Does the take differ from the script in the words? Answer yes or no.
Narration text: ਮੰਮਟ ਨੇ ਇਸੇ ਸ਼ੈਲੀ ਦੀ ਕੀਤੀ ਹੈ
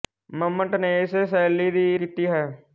no